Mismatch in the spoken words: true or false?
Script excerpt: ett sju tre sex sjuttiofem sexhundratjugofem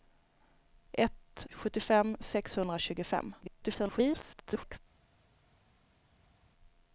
true